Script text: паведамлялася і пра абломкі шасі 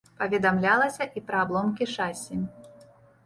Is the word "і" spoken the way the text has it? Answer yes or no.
yes